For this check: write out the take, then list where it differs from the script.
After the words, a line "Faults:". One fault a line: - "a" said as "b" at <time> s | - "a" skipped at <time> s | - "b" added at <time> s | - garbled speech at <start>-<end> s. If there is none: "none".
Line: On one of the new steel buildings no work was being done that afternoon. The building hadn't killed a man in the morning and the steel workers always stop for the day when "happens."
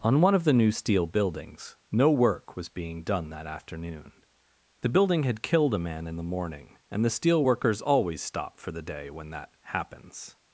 On one of the new steel buildings no work was being done that afternoon. The building had killed a man in the morning and the steel workers always stop for the day when that "happens."
Faults:
- "hadn't" said as "had" at 5.2 s
- "that" added at 9.3 s